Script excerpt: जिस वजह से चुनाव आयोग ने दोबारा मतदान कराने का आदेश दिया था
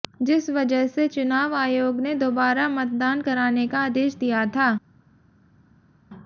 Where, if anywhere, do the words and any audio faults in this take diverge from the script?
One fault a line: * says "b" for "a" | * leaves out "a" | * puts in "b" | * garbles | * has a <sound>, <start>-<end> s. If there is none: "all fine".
all fine